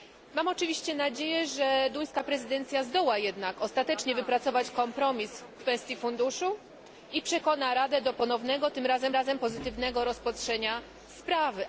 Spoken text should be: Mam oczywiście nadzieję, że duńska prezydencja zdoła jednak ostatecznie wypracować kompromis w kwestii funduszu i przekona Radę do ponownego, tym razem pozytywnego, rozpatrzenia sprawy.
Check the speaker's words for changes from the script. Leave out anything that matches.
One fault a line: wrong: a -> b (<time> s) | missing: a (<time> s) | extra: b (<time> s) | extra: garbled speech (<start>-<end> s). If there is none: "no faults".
extra: razem (9.1 s)